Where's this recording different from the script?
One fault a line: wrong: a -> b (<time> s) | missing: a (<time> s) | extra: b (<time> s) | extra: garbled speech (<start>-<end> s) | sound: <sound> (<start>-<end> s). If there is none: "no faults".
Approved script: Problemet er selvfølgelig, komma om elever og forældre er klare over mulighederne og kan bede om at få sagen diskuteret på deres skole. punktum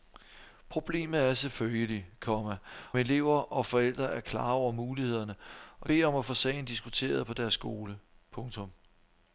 missing: om (2.6 s)
missing: kan (5.9 s)